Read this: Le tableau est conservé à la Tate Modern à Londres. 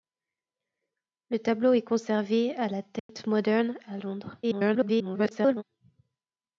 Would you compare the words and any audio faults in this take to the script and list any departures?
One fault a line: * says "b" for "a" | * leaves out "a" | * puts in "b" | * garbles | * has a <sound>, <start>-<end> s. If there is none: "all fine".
* has a dropout, 3.0-3.1 s
* garbles